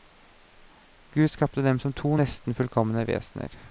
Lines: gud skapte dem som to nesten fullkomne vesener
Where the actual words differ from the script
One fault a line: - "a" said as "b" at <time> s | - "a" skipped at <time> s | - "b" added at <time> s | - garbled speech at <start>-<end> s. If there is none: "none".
none